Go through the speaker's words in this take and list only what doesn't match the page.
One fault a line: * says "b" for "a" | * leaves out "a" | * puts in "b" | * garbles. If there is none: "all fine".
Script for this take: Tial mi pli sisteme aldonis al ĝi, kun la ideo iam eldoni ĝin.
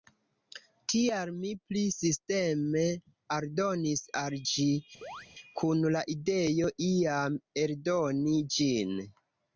all fine